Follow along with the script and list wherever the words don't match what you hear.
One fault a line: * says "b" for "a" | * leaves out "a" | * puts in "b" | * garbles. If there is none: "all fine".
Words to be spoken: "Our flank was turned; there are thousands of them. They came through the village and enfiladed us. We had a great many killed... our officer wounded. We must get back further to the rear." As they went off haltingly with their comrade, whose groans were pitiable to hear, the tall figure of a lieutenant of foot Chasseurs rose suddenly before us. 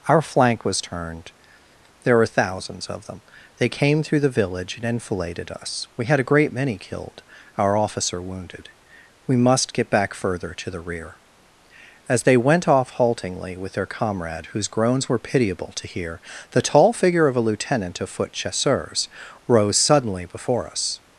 * says "were" for "are"